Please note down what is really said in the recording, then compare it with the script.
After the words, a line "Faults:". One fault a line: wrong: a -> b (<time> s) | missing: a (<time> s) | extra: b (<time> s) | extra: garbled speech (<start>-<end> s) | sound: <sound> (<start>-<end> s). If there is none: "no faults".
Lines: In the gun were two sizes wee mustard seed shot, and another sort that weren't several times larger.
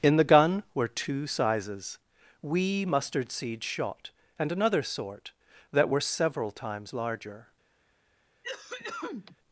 In the gun were two sizes wee mustard seed shot, and another sort that were several times larger.
Faults:
wrong: weren't -> were (5.9 s)
sound: cough (8.4-9.4 s)